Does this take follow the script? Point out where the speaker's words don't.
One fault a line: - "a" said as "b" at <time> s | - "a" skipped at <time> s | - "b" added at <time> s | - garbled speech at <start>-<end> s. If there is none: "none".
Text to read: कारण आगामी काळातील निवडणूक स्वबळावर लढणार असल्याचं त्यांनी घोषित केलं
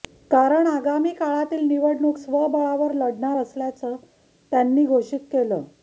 none